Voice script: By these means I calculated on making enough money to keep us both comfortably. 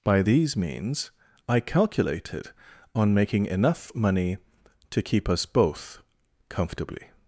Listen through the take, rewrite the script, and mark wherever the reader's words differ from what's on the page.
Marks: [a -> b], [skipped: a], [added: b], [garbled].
By these means I calculated on making enough money to keep us both comfortably.